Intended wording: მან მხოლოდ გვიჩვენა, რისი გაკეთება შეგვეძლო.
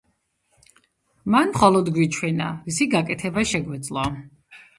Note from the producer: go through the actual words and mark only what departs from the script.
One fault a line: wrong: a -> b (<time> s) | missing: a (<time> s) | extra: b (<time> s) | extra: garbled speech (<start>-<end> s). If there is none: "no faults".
no faults